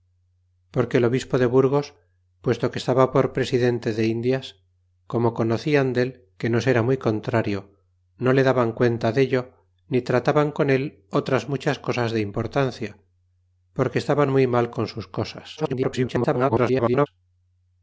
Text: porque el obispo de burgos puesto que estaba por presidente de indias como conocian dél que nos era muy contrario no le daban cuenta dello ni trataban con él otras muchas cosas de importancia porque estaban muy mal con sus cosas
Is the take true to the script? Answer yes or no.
no